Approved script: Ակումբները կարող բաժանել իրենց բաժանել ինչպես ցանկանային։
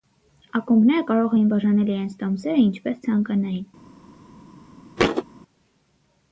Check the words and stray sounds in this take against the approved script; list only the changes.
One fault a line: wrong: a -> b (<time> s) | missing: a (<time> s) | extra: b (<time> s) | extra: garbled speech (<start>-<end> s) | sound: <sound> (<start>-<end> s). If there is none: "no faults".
extra: էին (1.4 s)
wrong: բաժանել -> տոմսերը (2.2 s)
sound: thud (5.0-5.2 s)